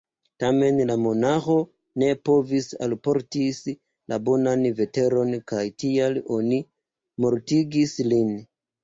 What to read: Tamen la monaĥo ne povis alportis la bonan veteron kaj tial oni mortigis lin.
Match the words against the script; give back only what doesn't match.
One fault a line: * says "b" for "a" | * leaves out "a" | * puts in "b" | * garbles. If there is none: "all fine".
all fine